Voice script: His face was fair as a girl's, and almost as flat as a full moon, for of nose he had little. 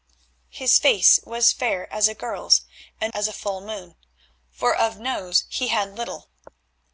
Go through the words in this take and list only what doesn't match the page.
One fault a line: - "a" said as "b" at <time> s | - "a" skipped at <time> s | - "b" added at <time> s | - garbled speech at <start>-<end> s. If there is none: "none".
- "almost as flat" skipped at 3.1 s